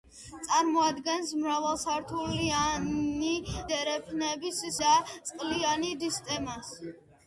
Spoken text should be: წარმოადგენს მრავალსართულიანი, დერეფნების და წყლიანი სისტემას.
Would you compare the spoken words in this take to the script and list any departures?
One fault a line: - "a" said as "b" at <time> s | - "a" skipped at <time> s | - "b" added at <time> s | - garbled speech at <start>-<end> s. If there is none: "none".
none